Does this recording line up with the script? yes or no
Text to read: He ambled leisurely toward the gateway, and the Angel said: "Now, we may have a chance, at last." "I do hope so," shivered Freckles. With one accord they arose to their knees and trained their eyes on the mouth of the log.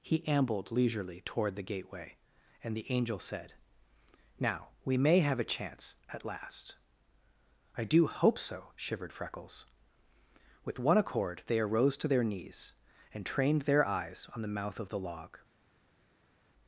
yes